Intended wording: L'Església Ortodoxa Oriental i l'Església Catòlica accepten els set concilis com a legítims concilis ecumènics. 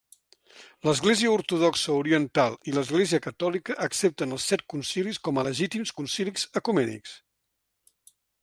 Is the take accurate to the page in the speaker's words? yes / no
yes